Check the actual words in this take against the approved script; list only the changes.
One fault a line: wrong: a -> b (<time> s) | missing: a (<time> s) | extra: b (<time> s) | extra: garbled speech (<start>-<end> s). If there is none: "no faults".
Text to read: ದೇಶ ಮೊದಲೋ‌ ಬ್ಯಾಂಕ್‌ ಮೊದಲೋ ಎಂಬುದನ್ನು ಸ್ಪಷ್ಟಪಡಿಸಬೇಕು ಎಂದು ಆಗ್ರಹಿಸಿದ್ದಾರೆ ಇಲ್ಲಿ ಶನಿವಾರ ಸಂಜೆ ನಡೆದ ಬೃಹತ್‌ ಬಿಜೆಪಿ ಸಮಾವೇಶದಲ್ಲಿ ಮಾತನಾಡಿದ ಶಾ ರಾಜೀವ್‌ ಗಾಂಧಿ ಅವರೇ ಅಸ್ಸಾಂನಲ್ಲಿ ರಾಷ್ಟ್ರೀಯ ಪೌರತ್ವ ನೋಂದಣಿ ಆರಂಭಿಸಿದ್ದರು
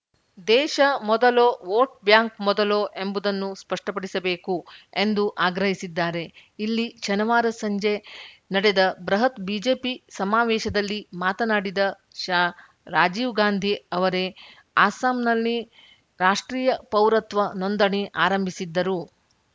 extra: ವೋಟ್ (1.6 s)